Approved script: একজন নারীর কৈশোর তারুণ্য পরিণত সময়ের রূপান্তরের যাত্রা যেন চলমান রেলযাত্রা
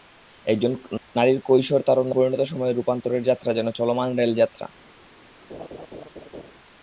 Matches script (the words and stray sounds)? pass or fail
fail